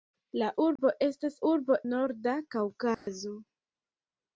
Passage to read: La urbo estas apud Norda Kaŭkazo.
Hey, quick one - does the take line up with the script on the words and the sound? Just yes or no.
no